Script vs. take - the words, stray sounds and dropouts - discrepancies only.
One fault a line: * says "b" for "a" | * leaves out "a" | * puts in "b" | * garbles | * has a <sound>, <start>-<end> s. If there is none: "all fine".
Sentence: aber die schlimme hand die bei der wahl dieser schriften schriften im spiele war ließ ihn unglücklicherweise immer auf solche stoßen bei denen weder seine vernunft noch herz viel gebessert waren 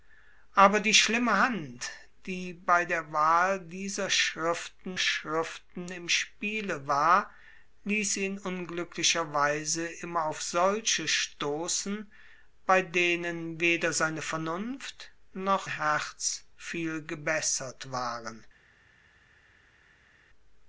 all fine